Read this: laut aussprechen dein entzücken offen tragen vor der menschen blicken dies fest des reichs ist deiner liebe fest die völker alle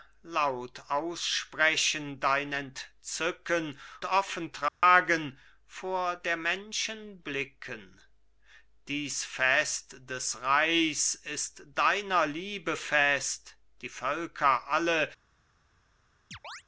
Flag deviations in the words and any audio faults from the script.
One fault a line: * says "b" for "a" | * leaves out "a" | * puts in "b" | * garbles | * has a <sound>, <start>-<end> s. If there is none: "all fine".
* has a dropout, 4.7-4.8 s
* has a chirp, 16.3-16.6 s